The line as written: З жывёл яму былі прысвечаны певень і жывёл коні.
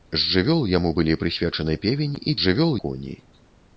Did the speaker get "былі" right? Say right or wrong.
right